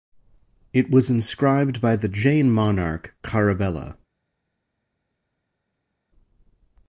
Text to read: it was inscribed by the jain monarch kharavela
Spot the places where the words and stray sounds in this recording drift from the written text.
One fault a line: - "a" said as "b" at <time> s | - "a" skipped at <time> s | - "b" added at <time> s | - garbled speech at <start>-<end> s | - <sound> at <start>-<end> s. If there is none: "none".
none